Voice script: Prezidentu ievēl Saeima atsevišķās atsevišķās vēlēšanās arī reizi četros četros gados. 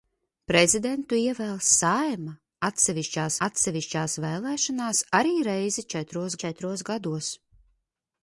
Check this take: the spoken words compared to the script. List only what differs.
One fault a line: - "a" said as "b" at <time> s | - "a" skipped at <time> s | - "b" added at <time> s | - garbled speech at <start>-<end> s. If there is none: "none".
none